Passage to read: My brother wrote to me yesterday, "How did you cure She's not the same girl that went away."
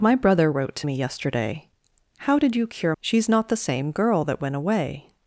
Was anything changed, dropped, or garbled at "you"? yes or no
no